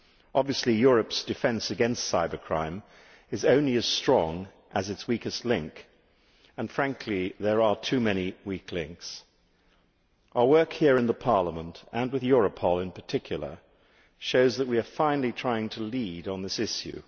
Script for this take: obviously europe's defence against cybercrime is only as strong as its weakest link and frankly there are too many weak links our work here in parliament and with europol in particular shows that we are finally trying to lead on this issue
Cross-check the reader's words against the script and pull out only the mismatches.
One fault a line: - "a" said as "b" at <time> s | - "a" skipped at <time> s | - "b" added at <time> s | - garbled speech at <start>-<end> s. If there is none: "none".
none